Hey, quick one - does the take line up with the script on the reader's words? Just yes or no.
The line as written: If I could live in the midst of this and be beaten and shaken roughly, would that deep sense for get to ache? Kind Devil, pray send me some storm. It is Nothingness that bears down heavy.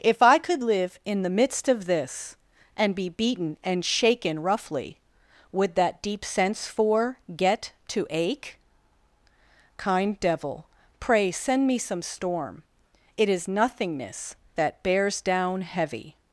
yes